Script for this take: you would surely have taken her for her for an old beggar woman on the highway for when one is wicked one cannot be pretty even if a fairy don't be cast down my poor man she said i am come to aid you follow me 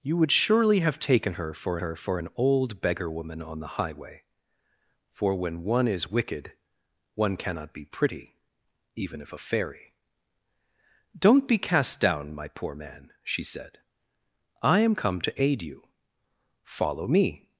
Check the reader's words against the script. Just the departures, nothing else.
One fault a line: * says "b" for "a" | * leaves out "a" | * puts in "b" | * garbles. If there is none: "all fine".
all fine